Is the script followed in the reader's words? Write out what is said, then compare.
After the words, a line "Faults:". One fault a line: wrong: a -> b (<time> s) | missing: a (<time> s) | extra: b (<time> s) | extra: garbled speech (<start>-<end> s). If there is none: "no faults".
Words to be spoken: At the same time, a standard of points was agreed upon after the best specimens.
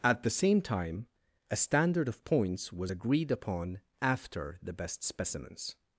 At the same time, a standard of points was agreed upon after the best specimens.
Faults:
no faults